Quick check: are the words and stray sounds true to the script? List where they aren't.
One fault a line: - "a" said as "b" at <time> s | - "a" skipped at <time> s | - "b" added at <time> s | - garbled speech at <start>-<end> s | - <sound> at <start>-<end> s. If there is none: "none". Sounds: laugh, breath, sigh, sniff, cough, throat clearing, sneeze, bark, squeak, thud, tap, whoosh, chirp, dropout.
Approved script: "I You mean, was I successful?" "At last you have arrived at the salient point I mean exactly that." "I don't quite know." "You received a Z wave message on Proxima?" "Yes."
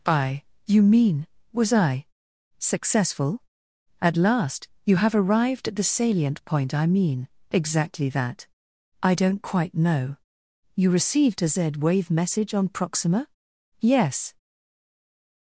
none